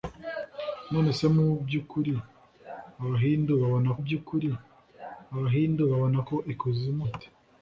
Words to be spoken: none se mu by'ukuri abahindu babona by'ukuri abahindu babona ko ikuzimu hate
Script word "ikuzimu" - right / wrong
right